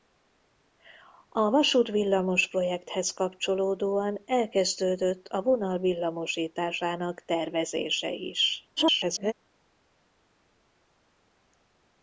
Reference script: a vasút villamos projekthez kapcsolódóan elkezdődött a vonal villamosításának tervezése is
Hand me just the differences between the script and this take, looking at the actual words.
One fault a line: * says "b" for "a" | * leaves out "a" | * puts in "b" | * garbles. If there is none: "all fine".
* garbles